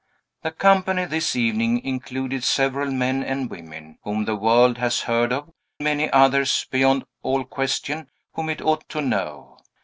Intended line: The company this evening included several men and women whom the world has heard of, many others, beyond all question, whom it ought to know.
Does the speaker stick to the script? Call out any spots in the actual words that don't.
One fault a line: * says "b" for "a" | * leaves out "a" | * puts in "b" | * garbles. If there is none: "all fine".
all fine